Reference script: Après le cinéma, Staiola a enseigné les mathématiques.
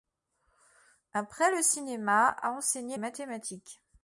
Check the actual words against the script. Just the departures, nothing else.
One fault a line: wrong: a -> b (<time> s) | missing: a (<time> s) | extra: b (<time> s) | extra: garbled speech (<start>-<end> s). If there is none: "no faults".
missing: Staiola (2.4 s)
missing: les (3.0 s)